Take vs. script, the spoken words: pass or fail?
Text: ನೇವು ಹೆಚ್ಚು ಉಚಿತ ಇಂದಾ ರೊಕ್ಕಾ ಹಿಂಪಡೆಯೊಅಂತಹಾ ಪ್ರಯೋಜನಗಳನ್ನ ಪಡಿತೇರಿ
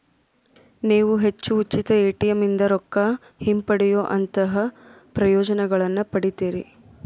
fail